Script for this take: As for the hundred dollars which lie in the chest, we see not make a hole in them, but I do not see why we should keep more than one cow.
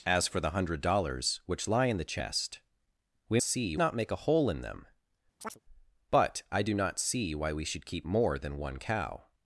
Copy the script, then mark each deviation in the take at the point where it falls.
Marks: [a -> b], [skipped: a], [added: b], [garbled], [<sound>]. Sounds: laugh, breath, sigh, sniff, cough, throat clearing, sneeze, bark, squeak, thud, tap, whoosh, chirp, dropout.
As for the hundred dollars which lie in the chest, we see not make a hole in them, [chirp] but I do not see why we should keep more than one cow.